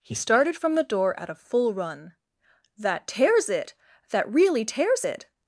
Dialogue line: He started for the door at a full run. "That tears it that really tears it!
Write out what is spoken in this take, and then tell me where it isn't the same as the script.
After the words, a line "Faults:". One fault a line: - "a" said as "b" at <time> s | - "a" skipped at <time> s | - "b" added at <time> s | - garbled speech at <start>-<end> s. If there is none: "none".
He started from the door at a full run. "That tears it that really tears it!
Faults:
- "for" said as "from" at 0.6 s